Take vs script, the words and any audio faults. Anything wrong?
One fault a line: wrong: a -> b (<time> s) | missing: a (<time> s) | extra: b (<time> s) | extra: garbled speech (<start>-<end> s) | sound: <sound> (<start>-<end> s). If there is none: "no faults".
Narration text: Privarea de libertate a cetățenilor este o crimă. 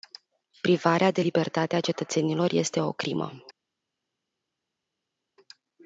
no faults